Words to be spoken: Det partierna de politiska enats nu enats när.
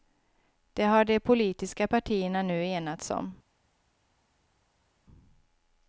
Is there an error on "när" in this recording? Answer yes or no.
yes